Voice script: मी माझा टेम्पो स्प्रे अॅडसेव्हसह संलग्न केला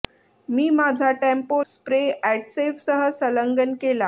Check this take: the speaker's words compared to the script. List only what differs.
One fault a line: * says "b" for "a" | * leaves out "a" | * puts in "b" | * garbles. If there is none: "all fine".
all fine